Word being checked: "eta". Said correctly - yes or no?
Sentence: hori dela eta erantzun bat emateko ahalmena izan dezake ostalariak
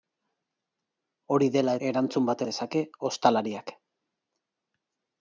no